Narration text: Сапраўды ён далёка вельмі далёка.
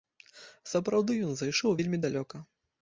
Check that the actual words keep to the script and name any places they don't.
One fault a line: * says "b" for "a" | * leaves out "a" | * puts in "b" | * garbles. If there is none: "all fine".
* says "зайшоў" for "далёка"